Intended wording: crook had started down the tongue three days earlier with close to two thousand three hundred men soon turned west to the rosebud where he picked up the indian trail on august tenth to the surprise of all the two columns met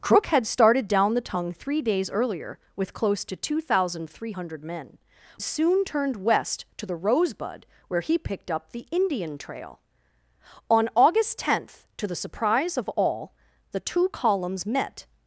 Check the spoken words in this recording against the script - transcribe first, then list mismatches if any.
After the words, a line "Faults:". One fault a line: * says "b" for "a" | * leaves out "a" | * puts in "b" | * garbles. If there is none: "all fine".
crook had started down the tongue three days earlier with close to two thousand three hundred men soon turned west to the rosebud where he picked up the indian trail on august tenth to the surprise of all the two columns met
Faults:
all fine